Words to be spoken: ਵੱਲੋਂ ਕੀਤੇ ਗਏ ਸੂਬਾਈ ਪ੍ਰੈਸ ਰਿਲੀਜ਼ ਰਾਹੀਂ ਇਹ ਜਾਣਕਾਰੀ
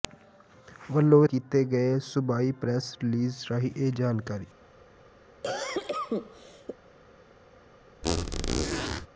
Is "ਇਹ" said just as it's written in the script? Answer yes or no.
yes